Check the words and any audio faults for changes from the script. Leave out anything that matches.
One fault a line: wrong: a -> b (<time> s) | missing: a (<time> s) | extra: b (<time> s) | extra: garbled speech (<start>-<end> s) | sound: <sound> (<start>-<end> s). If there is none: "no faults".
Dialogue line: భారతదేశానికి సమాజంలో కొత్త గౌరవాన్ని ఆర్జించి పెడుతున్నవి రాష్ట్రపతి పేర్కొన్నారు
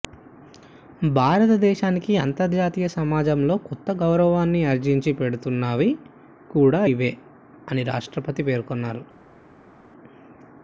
extra: అంతర్జాతీయ (2.2 s)
extra: కూడా ఇవే అని (6.5 s)